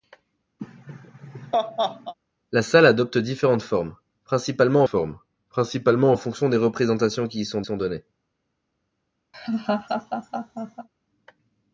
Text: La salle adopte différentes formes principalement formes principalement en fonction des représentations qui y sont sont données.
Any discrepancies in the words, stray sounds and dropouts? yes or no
yes